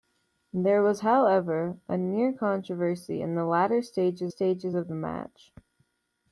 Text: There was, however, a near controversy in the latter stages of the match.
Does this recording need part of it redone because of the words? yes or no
yes